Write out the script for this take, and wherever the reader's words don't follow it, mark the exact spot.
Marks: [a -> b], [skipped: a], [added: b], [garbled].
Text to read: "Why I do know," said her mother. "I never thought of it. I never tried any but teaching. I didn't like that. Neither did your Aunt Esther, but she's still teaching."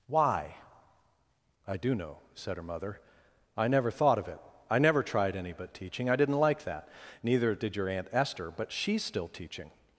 "Why I do know," said her mother. "I never thought of it. I never tried any but teaching. I didn't like that. Neither did your Aunt Esther, but she's still teaching."